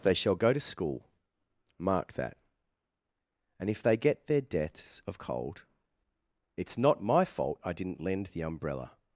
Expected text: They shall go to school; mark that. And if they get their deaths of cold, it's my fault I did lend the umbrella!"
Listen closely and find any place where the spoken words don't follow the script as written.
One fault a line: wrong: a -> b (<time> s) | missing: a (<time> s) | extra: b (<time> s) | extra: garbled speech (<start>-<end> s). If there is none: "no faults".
extra: not (6.8 s)
wrong: did -> didn't (7.7 s)